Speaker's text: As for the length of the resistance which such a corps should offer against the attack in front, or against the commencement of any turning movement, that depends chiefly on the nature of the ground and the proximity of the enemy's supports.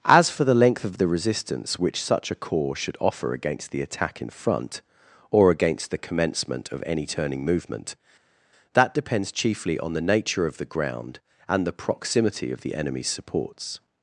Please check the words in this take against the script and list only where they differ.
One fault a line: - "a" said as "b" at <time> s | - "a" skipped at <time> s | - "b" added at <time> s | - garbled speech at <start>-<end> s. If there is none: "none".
none